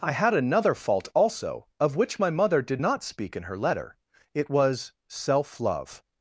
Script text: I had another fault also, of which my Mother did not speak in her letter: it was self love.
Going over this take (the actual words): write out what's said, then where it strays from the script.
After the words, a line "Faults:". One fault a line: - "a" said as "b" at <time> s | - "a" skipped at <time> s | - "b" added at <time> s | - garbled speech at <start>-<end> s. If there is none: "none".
I had another fault also, of which my Mother did not speak in her letter: it was self love.
Faults:
none